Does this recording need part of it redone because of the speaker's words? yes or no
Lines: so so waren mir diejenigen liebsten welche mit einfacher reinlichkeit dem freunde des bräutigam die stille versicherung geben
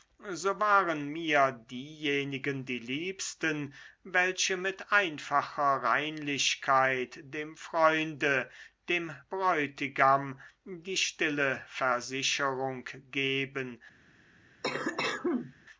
yes